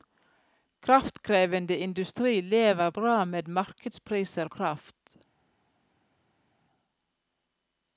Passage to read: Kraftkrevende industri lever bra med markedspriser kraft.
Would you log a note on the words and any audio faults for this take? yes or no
no